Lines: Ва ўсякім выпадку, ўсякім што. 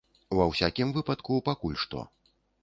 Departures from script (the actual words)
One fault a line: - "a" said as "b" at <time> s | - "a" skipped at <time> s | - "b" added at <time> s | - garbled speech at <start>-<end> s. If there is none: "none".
- "ўсякім" said as "пакуль" at 1.5 s